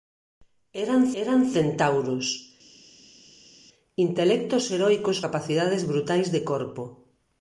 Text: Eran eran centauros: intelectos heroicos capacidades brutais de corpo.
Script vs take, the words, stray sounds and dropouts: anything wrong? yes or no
no